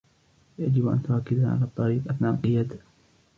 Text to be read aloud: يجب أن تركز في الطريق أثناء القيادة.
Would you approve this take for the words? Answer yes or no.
no